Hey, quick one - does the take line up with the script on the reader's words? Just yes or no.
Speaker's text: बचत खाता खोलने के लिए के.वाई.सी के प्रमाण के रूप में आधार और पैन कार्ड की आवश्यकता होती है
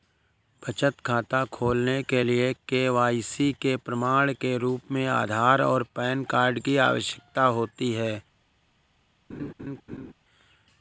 yes